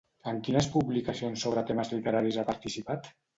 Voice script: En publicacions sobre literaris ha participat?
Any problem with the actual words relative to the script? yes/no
yes